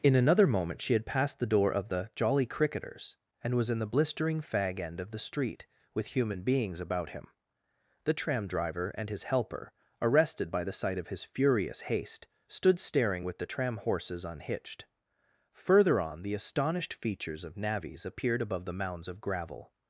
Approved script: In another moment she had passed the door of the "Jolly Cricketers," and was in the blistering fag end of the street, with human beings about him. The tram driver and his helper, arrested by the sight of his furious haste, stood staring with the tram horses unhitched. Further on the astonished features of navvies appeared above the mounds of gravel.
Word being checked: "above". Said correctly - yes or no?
yes